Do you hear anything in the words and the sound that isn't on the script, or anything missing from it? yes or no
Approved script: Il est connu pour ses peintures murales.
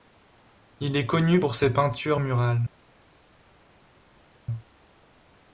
no